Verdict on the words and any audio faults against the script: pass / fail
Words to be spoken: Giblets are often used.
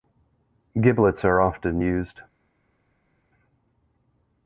pass